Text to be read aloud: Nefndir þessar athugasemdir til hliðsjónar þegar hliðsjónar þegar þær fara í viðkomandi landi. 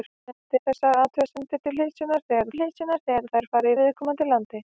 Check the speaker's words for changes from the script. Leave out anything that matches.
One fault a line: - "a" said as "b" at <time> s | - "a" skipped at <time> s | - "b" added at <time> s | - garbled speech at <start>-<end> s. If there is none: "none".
none